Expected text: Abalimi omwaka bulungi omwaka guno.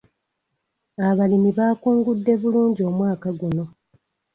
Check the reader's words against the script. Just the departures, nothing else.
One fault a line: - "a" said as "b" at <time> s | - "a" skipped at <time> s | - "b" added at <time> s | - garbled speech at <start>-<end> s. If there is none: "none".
- "omwaka" said as "baakungudde" at 1.6 s